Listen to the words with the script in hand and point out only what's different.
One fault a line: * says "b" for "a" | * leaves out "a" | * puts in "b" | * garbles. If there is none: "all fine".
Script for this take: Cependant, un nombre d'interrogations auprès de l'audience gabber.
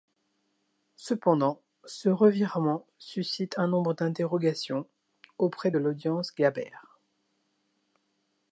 * puts in "ce revirement suscite"